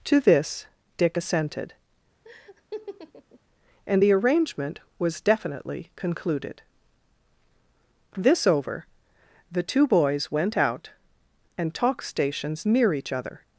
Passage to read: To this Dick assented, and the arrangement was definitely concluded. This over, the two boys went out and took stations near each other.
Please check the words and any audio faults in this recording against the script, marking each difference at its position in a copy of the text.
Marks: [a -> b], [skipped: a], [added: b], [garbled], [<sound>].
To this Dick assented, [laugh] and the arrangement was definitely concluded. This over, the two boys went out and [took -> talk] stations near each other.